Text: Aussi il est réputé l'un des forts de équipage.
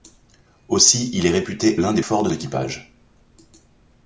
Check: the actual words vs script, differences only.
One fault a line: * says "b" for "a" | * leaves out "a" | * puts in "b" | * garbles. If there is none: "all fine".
all fine